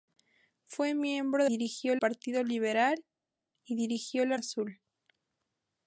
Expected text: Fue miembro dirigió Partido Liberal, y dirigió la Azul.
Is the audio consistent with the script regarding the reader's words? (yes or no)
yes